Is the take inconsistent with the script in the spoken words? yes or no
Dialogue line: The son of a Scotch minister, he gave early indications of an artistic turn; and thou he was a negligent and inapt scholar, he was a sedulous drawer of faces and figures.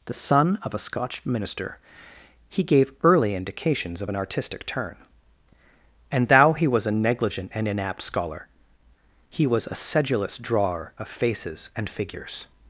no